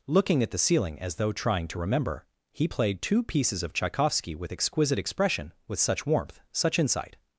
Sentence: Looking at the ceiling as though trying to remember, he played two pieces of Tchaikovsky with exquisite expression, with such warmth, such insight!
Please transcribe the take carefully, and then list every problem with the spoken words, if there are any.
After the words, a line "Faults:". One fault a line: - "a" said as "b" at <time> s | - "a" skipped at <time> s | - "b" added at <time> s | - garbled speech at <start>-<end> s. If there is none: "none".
Looking at the ceiling as though trying to remember, he played two pieces of Tchaikovsky with exquisite expression, with such warmth, such insight!
Faults:
none